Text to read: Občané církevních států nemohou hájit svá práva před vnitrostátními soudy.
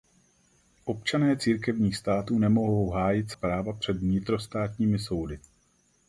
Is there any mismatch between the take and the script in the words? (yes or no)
yes